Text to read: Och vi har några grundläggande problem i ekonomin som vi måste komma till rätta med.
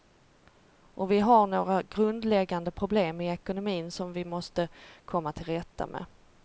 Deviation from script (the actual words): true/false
false